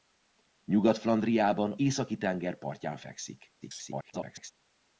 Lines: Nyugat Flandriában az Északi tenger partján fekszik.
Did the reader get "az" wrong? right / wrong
wrong